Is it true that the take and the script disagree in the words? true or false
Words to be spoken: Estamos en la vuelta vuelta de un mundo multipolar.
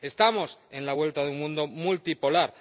true